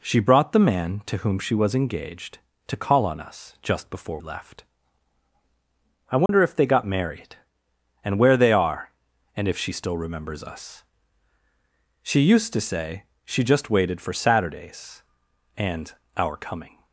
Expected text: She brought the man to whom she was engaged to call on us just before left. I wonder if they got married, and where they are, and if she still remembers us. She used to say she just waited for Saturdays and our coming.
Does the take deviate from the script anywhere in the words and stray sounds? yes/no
yes